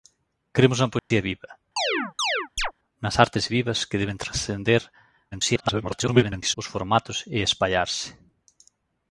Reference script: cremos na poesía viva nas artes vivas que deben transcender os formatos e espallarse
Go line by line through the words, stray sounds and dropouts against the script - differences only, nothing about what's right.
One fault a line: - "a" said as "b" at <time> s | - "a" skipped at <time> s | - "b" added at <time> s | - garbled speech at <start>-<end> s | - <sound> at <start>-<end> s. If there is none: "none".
- dropout at 1.0-1.1 s
- chirp at 1.8-2.7 s
- garbled speech at 5.3-6.6 s